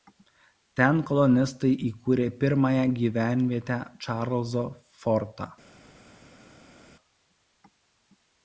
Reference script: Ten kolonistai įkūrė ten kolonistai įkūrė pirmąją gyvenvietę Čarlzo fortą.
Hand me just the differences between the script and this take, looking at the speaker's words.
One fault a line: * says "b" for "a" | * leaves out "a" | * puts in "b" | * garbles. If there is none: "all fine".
* leaves out "ten kolonistai įkūrė"